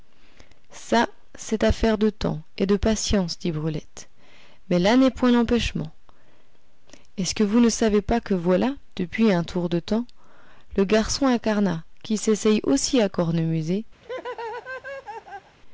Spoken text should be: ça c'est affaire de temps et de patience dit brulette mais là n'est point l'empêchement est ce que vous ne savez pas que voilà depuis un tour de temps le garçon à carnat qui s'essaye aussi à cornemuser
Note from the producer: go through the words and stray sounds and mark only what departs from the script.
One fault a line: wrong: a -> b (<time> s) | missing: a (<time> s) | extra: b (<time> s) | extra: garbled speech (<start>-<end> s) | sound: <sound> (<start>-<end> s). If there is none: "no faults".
sound: laugh (14.0-15.6 s)